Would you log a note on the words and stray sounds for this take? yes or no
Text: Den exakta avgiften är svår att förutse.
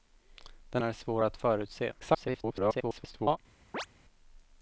yes